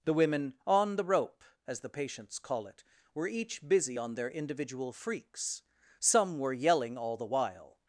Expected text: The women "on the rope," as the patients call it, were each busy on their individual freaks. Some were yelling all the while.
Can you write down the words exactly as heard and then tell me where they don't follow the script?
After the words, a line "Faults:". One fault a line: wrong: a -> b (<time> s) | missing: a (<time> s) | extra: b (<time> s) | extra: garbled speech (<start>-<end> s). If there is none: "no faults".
The women "on the rope," as the patients call it, were each busy on their individual freaks. Some were yelling all the while.
Faults:
no faults